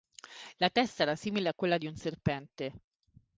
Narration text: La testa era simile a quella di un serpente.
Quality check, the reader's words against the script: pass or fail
pass